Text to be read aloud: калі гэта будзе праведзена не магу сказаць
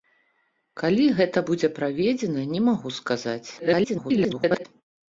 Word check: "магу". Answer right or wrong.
right